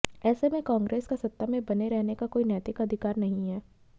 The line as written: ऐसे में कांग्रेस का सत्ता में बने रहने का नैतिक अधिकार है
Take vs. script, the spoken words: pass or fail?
fail